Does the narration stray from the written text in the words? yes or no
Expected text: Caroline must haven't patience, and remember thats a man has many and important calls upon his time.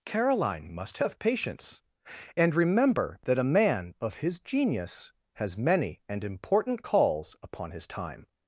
yes